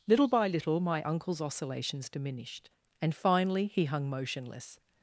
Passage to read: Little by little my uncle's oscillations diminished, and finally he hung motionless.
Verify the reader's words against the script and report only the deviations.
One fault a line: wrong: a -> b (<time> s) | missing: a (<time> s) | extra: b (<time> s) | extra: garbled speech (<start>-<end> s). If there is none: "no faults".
no faults